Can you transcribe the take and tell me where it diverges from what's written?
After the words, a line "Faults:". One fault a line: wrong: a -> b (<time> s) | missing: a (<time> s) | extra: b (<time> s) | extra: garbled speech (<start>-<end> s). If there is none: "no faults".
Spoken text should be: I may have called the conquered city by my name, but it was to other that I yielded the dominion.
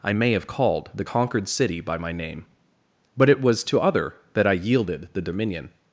I may have called the conquered city by my name, but it was to other that I yielded the dominion.
Faults:
no faults